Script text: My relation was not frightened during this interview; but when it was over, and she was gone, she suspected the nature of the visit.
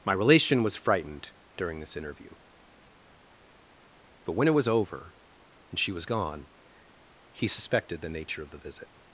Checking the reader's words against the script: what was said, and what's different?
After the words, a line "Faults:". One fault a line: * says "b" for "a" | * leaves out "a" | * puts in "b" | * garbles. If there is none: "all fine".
My relation was frightened during this interview; but when it was over, and she was gone, he suspected the nature of the visit.
Faults:
* leaves out "not"
* says "he" for "she"